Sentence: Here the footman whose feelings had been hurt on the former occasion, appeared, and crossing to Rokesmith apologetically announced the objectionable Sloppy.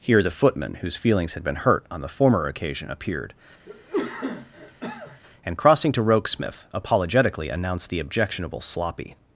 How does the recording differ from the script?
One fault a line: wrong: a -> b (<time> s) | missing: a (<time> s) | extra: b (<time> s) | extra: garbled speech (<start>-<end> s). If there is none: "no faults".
no faults